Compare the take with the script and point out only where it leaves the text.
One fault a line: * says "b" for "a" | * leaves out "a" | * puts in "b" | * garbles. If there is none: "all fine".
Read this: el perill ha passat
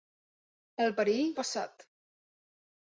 all fine